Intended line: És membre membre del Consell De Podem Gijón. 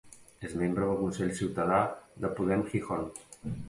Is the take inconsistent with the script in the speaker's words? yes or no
yes